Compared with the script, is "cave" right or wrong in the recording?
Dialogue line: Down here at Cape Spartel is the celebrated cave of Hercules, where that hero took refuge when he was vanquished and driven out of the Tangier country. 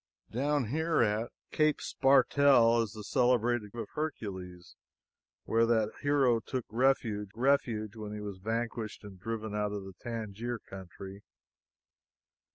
wrong